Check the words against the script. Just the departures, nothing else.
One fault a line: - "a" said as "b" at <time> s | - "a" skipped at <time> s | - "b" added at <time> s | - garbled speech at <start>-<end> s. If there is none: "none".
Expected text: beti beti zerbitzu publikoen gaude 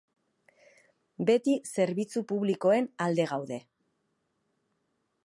- "beti" skipped at 1.5 s
- "alde" added at 3.1 s